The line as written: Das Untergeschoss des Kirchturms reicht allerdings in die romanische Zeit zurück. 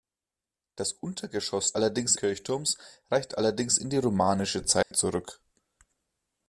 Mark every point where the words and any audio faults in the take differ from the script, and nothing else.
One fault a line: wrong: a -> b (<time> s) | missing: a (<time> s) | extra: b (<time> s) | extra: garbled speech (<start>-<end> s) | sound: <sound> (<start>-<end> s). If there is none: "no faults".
wrong: des -> allerdings (1.7 s)
sound: dropout (4.8-4.9 s)